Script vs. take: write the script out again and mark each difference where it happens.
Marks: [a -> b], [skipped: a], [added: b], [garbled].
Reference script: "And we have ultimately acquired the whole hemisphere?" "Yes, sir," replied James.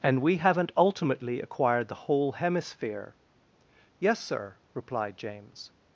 "And we [have -> haven't] ultimately acquired the whole hemisphere?" "Yes, sir," replied James.